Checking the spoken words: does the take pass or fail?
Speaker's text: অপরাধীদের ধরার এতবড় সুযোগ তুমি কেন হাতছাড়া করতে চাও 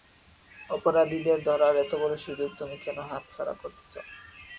pass